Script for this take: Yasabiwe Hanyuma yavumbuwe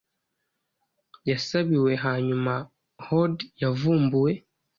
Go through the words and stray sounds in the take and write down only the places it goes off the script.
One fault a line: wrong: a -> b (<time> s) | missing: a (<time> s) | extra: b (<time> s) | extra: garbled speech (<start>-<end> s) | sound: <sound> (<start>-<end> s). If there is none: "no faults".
extra: hoard (3.0 s)